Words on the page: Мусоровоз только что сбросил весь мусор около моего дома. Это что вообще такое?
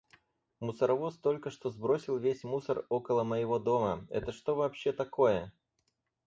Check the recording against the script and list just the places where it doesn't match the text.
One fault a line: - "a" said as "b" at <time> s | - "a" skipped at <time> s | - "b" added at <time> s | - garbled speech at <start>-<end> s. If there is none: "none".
none